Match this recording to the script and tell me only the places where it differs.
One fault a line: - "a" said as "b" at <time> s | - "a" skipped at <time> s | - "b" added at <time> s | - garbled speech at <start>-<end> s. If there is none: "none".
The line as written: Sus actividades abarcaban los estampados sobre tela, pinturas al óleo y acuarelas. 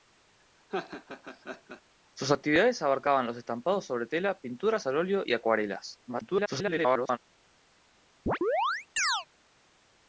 - garbled speech at 6.1-7.2 s